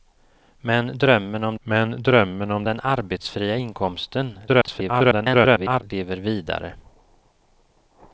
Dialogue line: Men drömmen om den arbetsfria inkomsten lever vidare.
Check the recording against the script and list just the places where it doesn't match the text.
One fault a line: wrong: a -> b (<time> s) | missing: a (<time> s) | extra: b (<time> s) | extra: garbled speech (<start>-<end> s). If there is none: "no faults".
extra: men drömmen om (1.6 s)
extra: garbled speech (4.5-5.8 s)